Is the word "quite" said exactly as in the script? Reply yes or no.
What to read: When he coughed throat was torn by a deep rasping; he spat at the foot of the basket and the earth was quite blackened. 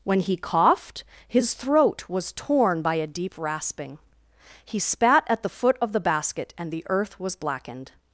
no